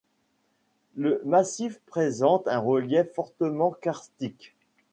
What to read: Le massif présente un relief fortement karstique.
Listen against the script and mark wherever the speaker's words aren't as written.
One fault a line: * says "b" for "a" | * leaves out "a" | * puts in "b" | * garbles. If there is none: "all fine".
all fine